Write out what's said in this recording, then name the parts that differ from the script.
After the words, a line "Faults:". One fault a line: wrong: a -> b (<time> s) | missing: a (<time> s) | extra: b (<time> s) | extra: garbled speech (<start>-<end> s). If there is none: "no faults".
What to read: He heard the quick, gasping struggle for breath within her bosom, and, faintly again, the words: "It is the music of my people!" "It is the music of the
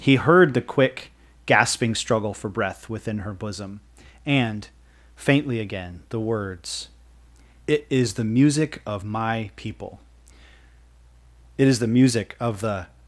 He heard the quick, gasping struggle for breath within her bosom, and, faintly again, the words: "It is the music of my people!" "It is the music of the
Faults:
no faults